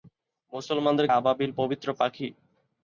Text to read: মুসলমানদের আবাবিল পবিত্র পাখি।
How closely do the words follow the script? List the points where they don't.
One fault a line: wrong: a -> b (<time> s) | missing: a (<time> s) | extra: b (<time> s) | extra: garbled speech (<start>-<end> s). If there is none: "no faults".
no faults